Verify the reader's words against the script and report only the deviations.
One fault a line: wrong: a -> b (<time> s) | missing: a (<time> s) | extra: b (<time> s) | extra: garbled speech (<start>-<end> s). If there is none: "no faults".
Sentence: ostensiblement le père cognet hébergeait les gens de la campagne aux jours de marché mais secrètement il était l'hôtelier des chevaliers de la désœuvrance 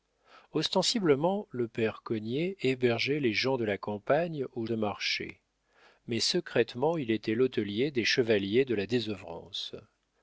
missing: jours (4.7 s)